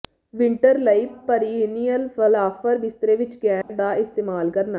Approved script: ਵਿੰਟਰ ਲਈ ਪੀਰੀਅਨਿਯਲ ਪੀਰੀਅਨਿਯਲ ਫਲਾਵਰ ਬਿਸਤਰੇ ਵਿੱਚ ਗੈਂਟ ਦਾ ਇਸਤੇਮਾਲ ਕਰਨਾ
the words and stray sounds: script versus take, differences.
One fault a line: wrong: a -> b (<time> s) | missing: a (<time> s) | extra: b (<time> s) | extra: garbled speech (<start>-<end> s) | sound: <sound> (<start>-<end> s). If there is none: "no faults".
missing: ਪੀਰੀਅਨਿਯਲ (2.1 s)
sound: dropout (3.6-3.7 s)